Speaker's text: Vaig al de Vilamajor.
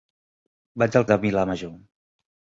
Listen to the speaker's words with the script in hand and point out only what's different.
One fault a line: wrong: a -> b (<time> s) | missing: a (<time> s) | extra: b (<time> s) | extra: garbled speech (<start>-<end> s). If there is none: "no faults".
no faults